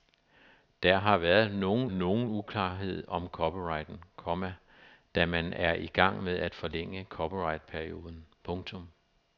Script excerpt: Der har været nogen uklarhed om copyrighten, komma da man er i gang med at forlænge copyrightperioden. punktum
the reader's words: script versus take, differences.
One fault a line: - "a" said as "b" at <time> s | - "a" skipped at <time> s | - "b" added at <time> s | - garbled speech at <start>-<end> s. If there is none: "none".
- "nogen" added at 1.9 s